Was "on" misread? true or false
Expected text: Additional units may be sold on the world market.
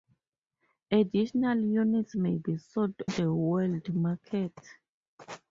true